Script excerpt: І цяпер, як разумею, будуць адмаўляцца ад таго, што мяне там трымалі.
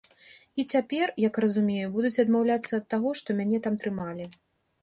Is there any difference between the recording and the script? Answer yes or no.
no